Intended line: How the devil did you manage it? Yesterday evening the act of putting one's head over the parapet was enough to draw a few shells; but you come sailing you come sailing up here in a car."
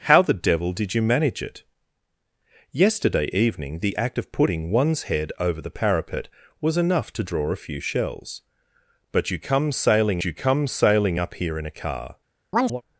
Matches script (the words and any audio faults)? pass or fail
fail